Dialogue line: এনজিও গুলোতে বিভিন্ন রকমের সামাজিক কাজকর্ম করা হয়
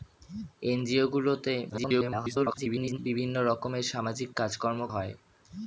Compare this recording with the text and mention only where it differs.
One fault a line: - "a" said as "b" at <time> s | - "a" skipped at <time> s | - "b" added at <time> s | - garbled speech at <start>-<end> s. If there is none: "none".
- garbled speech at 1.7-3.0 s
- "করা" skipped at 4.8 s